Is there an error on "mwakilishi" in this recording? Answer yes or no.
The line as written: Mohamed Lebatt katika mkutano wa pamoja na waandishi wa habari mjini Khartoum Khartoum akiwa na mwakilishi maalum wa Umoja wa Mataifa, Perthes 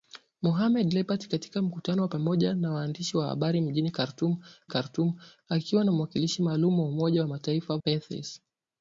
no